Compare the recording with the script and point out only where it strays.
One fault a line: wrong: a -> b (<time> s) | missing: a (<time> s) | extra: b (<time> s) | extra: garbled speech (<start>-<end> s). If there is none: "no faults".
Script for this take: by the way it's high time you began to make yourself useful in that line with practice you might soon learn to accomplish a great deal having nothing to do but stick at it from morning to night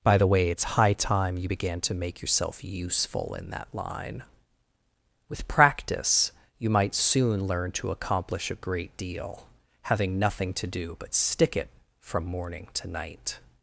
missing: at (11.6 s)